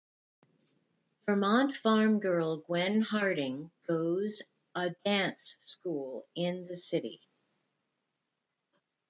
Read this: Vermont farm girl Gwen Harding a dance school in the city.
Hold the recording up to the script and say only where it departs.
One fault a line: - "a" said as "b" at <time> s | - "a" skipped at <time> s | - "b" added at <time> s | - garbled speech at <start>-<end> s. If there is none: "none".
- "goes" added at 3.9 s